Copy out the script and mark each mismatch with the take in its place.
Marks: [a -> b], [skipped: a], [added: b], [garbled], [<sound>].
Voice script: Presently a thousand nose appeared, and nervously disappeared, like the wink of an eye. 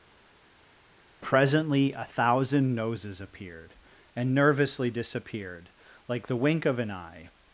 Presently a thousand [nose -> noses] appeared, and nervously disappeared, like the wink of an eye.